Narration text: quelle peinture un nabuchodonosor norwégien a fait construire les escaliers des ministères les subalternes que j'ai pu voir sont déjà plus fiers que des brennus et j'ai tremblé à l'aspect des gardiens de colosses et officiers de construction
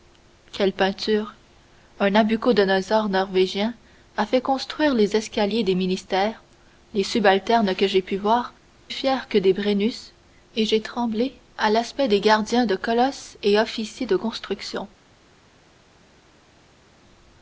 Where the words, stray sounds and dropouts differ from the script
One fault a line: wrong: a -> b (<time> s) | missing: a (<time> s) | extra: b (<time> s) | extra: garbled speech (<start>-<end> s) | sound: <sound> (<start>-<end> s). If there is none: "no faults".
missing: sont déjà plus (8.5 s)